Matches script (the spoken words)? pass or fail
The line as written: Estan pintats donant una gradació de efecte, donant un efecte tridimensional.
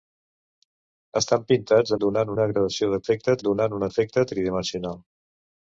pass